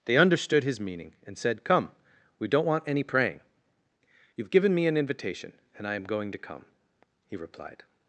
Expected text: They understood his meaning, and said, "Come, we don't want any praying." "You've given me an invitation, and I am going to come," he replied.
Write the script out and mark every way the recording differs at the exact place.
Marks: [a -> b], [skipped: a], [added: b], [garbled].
They understood his meaning, and said, "Come, we don't want any praying." "You've given me an invitation, and I am going to come," he replied.